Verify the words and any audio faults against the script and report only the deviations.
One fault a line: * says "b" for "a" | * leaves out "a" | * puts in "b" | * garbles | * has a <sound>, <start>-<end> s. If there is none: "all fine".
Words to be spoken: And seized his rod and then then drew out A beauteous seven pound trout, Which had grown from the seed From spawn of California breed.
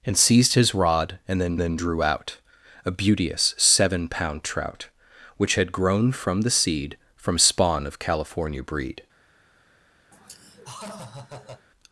* has a laugh, 10.1-11.7 s